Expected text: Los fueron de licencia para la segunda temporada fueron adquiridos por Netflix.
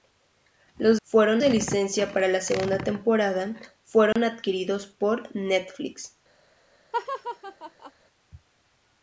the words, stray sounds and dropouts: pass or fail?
fail